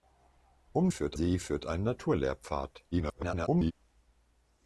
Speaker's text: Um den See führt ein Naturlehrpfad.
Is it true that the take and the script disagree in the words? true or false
true